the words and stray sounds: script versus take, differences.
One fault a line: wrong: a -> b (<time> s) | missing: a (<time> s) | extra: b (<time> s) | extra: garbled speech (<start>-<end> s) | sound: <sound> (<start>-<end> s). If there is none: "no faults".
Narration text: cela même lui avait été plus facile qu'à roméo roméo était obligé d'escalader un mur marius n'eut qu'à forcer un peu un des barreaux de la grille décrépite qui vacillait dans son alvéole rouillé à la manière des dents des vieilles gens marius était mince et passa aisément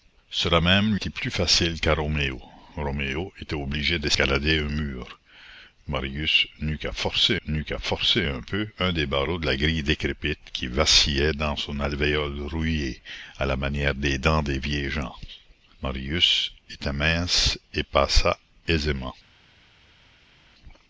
missing: lui avait (0.9 s)
extra: n'eut qu'à forcer (7.5 s)